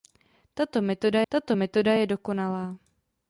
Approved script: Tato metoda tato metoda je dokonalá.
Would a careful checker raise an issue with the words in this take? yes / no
no